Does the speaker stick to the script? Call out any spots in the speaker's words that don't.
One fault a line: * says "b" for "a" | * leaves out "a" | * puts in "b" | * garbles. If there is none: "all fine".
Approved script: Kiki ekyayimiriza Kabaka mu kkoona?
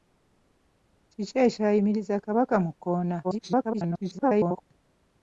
* garbles